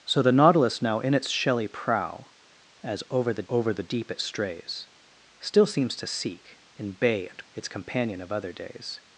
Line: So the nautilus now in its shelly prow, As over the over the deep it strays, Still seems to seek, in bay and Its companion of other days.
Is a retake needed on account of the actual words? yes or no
no